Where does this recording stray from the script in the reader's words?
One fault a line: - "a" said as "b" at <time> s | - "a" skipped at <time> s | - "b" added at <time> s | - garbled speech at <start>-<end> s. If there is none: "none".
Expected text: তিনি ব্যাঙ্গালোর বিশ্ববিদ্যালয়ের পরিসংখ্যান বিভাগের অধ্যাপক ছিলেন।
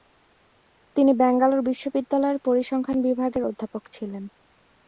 none